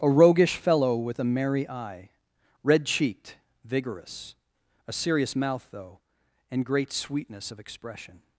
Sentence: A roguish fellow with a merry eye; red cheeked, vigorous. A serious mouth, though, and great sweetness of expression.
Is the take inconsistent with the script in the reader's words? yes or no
no